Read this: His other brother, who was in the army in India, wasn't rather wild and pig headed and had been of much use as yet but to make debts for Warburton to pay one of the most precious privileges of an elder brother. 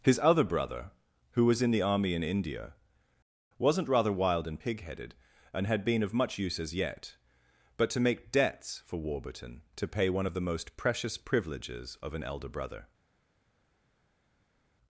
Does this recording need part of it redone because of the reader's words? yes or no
no